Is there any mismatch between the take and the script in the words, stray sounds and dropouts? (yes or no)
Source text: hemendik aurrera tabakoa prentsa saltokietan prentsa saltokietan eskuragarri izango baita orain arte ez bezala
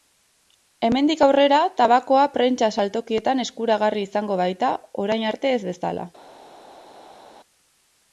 yes